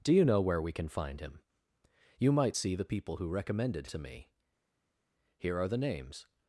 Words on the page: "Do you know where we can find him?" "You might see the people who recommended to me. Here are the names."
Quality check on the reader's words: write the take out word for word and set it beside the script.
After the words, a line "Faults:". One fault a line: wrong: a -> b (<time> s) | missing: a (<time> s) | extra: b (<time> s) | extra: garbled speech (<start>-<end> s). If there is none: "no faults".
"Do you know where we can find him?" "You might see the people who recommended to me. Here are the names."
Faults:
no faults